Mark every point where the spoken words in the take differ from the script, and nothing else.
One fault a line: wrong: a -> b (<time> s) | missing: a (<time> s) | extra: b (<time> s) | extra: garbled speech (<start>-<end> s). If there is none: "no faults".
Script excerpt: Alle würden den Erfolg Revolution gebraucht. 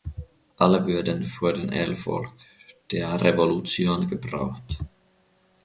extra: für (1.2 s)
extra: der (2.9 s)